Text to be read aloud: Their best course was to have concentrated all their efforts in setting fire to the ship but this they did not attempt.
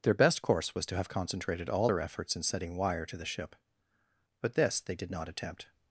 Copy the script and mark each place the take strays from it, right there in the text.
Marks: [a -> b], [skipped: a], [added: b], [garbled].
Their best course was to have concentrated all their efforts in setting [fire -> wire] to the ship but this they did not attempt.